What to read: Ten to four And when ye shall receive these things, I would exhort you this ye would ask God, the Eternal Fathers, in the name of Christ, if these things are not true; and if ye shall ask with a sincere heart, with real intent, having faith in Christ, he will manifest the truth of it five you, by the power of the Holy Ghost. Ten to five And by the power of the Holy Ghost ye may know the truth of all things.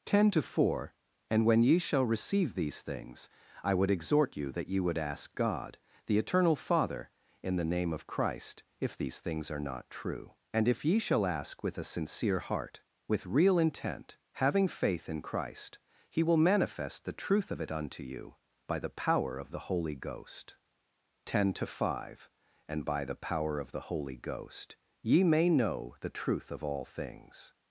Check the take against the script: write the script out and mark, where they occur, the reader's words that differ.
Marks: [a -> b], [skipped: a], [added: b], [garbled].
Ten to four And when ye shall receive these things, I would exhort you [this -> that] ye would ask God, the Eternal [Fathers, -> Father] in the name of Christ, if these things are not true; and if ye shall ask with a sincere heart, with real intent, having faith in Christ, he will manifest the truth of it [five -> unto] you, by the power of the Holy Ghost. Ten to five And by the power of the Holy Ghost ye may know the truth of all things.